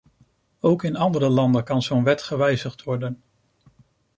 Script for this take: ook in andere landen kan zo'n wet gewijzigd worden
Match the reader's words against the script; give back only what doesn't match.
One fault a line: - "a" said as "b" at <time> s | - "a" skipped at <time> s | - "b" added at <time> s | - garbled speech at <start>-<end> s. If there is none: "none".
none